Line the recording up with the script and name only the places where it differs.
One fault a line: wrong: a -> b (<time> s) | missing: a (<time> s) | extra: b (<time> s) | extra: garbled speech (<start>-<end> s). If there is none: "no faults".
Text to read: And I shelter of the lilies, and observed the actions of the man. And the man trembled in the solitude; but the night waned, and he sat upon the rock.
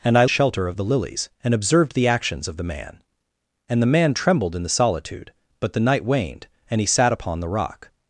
no faults